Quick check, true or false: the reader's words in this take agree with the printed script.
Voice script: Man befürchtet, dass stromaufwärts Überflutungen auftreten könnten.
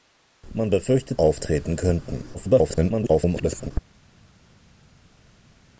false